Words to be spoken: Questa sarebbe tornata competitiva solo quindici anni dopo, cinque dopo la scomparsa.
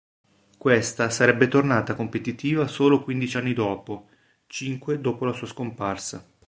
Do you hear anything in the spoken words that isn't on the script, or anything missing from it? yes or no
yes